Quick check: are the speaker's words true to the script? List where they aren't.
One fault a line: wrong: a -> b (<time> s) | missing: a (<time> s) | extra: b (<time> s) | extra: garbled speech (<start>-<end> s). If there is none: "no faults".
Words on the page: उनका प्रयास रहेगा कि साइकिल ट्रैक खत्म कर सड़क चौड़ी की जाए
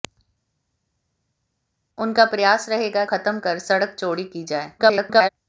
missing: कि साइकिल ट्रैक (3.0 s)
extra: garbled speech (4.8-5.3 s)